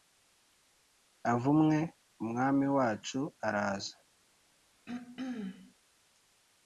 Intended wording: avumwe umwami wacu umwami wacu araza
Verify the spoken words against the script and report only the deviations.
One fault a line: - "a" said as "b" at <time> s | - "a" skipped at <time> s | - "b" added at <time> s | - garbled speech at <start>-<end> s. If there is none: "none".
- "umwami wacu" skipped at 3.2 s